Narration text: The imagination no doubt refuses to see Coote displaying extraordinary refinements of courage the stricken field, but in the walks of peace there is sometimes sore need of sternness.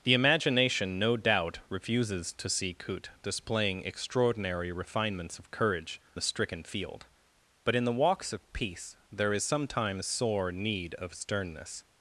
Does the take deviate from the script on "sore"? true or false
false